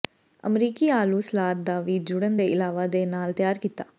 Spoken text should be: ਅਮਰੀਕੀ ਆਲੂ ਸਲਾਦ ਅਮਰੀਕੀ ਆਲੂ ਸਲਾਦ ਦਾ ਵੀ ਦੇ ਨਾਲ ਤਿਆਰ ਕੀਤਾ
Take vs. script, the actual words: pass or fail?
fail